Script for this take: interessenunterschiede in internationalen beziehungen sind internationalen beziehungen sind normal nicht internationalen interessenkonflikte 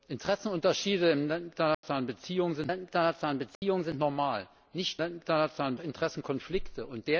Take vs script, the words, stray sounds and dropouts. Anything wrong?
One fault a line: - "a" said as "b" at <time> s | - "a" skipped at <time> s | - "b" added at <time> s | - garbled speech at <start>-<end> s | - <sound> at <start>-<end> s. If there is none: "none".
- dropout at 1.7-1.8 s
- dropout at 3.6-3.6 s